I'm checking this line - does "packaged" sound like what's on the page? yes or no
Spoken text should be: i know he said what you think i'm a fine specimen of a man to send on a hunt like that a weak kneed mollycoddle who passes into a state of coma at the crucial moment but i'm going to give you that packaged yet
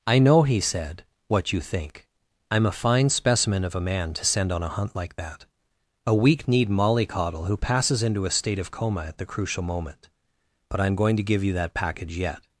no